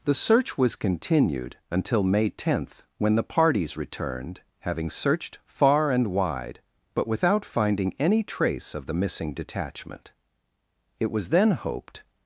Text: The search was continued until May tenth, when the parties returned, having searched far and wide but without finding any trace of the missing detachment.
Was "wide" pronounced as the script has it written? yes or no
yes